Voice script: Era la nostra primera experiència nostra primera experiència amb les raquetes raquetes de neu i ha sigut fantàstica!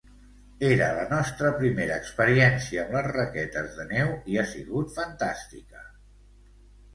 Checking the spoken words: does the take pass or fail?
fail